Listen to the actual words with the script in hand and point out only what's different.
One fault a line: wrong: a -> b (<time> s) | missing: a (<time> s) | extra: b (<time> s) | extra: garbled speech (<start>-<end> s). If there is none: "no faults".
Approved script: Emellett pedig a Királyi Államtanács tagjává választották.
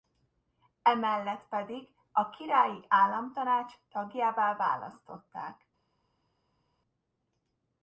no faults